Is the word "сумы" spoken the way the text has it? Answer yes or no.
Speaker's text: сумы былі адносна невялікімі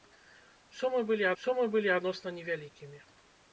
yes